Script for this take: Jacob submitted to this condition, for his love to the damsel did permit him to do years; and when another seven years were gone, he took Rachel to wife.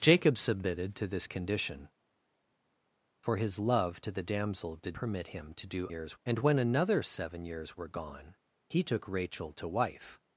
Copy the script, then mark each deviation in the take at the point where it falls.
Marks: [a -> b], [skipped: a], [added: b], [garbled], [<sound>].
Jacob submitted to this condition, for his love to the damsel did permit him to do years; and when another seven years were gone, he took Rachel to wife.